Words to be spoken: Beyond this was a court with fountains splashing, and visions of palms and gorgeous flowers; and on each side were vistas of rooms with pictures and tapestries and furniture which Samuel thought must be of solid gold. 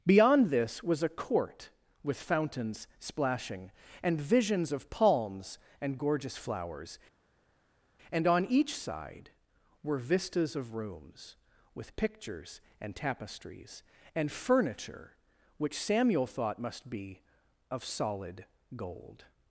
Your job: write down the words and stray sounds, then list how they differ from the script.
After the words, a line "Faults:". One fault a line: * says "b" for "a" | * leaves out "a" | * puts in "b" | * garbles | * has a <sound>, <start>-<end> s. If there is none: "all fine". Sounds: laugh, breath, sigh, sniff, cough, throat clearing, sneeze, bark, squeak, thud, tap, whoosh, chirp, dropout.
Beyond this was a court with fountains splashing, and visions of palms and gorgeous flowers; and on each side were vistas of rooms with pictures and tapestries and furniture which Samuel thought must be of solid gold.
Faults:
all fine